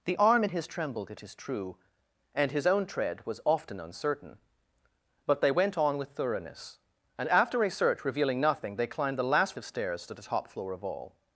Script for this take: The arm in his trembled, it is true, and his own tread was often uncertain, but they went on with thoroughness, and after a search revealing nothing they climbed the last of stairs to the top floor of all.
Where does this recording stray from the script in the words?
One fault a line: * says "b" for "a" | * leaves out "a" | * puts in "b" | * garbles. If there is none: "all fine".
all fine